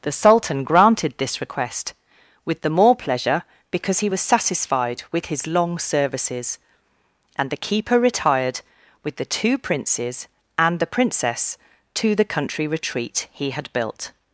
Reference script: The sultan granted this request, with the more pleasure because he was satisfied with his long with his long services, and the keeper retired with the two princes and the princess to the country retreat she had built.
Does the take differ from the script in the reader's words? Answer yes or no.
yes